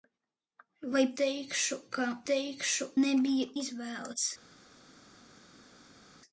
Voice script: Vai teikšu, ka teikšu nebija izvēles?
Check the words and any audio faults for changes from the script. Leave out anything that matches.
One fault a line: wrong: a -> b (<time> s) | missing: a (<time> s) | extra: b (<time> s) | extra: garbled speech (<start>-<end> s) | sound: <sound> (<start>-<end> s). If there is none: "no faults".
no faults